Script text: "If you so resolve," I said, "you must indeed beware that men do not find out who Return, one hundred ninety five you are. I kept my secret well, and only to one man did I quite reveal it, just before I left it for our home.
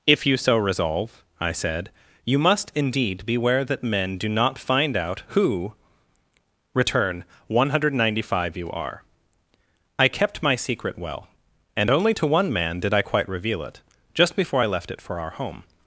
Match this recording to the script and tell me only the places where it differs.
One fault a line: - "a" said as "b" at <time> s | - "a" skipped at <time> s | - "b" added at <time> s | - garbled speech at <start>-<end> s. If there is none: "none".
none